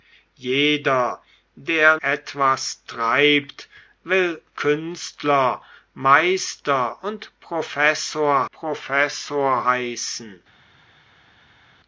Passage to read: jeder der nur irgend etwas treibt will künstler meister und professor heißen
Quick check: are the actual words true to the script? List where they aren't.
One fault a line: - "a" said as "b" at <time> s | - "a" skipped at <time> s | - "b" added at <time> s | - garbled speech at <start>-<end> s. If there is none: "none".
- "nur irgend" skipped at 2.0 s
- "professor" added at 8.5 s